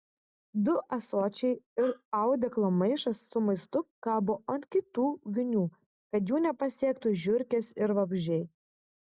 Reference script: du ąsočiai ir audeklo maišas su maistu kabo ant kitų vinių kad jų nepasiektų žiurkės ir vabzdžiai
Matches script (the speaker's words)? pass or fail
pass